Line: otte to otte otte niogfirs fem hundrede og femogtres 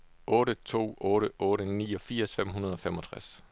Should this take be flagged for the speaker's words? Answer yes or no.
no